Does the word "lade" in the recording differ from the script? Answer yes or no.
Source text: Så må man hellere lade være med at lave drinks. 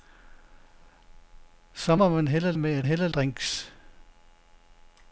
yes